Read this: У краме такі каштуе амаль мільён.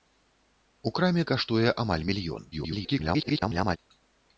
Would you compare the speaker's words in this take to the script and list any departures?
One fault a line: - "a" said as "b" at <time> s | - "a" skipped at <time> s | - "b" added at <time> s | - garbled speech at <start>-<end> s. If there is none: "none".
- "такі" skipped at 1.2 s
- garbled speech at 2.5-3.8 s